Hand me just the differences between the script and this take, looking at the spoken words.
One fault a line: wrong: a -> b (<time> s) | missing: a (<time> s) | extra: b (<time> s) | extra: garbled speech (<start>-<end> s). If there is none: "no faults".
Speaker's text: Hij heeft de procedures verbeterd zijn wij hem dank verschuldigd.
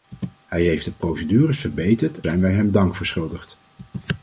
no faults